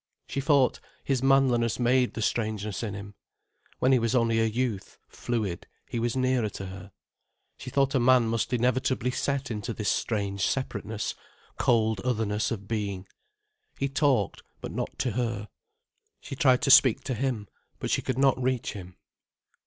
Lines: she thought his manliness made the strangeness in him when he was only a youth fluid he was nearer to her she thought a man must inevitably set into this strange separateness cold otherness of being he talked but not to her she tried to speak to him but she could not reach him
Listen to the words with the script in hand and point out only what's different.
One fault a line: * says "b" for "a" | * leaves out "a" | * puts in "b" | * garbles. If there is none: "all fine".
all fine